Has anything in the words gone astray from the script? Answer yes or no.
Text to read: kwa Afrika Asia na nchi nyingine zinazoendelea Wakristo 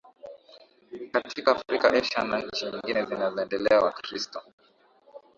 yes